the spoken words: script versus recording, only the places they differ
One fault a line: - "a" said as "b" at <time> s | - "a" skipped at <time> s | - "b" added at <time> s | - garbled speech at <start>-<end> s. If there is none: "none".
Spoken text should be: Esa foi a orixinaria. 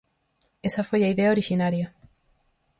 - "idea" added at 1.1 s